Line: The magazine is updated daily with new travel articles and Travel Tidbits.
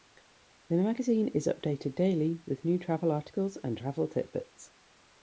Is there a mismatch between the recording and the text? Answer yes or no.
no